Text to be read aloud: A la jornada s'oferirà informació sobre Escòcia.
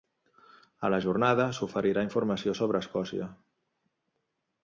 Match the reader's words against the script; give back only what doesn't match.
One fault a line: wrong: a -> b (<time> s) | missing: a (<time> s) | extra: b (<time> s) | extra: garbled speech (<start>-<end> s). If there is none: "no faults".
no faults